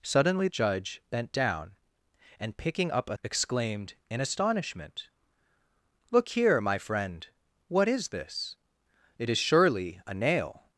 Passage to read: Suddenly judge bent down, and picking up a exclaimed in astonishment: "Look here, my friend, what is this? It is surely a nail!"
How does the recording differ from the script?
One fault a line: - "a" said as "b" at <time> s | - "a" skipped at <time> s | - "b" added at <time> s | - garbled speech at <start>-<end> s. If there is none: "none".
none